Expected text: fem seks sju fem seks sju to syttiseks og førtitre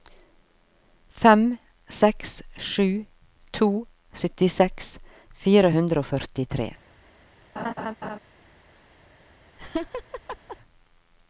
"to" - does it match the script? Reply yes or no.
no